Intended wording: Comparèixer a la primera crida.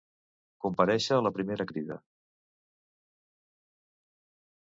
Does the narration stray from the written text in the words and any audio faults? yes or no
no